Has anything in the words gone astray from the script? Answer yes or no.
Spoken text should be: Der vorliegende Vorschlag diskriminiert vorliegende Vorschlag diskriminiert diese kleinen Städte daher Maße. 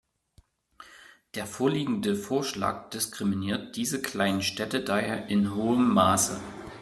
yes